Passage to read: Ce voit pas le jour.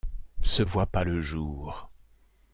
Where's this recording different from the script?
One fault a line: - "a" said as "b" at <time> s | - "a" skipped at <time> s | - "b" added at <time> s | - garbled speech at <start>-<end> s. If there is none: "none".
none